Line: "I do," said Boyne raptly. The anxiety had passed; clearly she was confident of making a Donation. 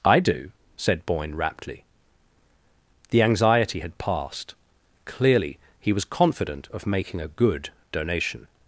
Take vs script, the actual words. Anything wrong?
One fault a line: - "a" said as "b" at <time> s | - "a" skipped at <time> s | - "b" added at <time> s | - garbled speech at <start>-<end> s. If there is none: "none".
- "she" said as "he" at 5.8 s
- "good" added at 7.3 s